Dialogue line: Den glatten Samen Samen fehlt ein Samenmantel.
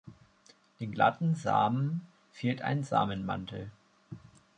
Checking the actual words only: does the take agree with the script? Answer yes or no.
no